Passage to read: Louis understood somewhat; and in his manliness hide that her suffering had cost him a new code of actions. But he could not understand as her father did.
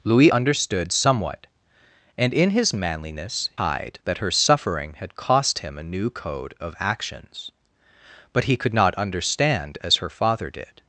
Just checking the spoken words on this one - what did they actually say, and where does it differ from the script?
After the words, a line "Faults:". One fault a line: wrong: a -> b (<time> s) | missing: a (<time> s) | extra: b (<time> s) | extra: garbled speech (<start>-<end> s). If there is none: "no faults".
Louis understood somewhat; and in his manliness hide that her suffering had cost him a new code of actions. But he could not understand as her father did.
Faults:
no faults